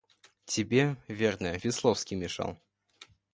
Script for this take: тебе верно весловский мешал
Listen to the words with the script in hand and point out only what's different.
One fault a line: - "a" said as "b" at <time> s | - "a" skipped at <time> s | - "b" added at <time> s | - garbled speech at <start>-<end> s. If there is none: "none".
none